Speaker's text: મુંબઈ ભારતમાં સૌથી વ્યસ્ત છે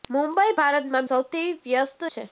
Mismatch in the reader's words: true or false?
false